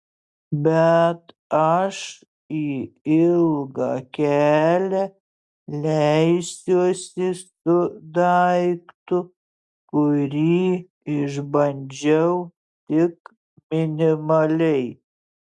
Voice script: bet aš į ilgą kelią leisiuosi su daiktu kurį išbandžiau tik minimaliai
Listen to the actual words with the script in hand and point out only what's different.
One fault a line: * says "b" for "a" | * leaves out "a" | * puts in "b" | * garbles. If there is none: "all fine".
all fine